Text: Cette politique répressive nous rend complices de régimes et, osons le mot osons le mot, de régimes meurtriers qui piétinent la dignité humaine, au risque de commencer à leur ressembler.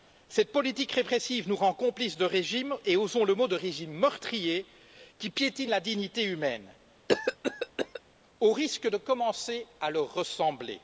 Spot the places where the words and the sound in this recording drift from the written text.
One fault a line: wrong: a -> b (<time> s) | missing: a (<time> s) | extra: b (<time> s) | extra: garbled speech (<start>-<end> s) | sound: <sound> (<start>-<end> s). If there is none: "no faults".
missing: osons le mot (3.5 s)
sound: cough (7.1-8.0 s)